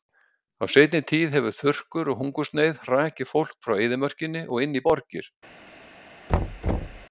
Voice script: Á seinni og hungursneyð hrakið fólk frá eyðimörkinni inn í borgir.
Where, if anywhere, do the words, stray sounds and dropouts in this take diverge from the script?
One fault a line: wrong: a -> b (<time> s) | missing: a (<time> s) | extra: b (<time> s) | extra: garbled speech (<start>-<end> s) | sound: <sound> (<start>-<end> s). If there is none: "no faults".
extra: tíð hefur þurrkur (1.1 s)
extra: og (4.5 s)
sound: thud (6.3-7.1 s)